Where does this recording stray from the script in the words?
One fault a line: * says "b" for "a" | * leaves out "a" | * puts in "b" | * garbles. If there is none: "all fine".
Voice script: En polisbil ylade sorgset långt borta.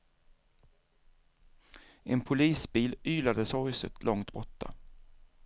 all fine